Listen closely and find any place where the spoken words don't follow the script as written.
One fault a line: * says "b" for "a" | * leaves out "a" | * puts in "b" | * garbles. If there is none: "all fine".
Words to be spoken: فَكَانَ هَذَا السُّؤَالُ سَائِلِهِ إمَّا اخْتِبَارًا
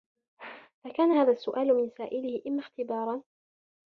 * puts in "مِنْ"